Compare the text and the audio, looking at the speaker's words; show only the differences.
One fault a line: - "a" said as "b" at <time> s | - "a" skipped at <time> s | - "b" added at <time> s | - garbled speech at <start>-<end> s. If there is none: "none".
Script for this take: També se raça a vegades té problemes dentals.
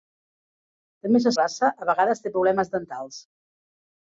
none